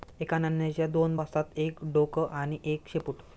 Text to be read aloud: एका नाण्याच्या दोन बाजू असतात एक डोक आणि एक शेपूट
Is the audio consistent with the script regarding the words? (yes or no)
no